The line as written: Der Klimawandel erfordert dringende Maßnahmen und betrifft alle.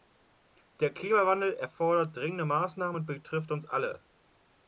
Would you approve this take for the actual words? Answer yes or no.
no